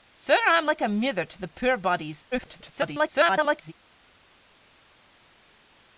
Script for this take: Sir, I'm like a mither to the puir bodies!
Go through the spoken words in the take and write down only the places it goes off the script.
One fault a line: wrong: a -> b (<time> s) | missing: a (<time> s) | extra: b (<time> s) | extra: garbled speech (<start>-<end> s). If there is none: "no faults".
extra: garbled speech (2.3-3.7 s)